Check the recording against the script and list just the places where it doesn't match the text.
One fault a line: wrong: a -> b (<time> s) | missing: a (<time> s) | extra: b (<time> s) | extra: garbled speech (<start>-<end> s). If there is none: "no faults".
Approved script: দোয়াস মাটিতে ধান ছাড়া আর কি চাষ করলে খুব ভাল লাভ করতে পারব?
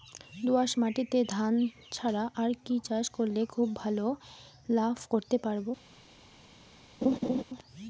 no faults